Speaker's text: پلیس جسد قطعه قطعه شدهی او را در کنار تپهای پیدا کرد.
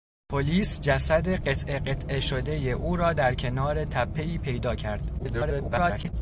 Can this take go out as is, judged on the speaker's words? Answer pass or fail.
fail